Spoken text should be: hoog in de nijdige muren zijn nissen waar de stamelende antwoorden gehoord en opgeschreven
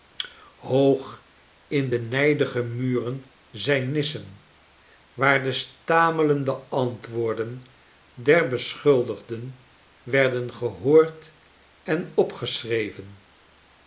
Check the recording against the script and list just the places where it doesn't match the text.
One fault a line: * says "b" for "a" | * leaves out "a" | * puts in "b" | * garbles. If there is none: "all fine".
* puts in "der beschuldigden werden"